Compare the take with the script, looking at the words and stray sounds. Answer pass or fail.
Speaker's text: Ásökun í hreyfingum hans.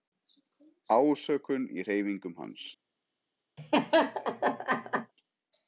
fail